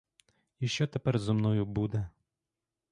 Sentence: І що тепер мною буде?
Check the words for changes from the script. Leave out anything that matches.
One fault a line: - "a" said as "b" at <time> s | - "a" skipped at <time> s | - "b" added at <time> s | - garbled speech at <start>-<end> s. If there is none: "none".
- "зо" added at 1.2 s